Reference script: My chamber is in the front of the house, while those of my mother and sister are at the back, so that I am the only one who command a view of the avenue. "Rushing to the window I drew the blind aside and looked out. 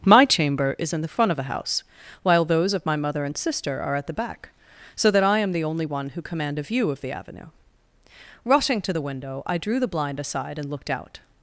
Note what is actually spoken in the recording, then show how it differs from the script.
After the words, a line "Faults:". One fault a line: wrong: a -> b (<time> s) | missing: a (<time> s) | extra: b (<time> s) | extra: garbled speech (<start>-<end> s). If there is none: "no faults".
My chamber is in the front of the house, while those of my mother and sister are at the back, so that I am the only one who command a view of the avenue. "Rushing to the window I drew the blind aside and looked out.
Faults:
no faults